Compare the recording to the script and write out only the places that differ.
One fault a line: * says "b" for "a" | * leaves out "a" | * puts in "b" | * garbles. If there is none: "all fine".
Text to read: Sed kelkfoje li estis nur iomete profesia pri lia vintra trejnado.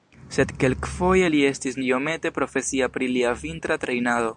* leaves out "nur"